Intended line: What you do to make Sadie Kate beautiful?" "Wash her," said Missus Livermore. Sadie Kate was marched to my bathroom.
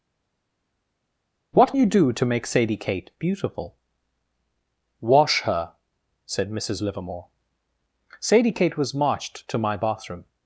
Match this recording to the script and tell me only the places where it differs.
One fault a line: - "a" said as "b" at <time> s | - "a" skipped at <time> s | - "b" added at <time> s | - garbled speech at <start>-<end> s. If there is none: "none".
none